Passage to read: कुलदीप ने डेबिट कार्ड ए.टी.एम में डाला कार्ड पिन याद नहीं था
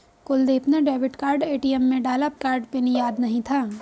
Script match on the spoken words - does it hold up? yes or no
yes